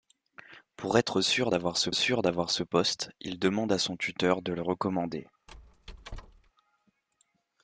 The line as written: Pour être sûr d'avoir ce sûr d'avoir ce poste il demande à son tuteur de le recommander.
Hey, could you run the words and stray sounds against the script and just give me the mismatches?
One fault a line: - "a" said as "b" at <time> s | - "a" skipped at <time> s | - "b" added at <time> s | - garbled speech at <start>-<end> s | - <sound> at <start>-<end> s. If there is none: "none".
- squeak at 5.5-6.5 s